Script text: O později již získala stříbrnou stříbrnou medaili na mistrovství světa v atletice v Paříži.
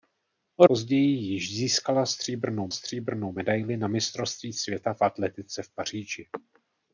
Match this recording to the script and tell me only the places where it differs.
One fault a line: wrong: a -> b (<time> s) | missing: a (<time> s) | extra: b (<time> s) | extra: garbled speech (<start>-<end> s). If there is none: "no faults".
no faults